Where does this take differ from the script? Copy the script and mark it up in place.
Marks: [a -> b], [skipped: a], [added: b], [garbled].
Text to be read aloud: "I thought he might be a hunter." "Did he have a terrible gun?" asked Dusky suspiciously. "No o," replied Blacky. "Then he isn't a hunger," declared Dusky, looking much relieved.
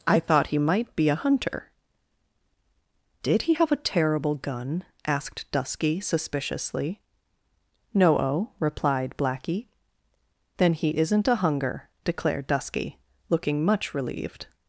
"I thought he might be a hunter." "Did he have a terrible gun?" asked Dusky suspiciously. "No o," replied Blacky. "Then he isn't a hunger," declared Dusky, looking much relieved.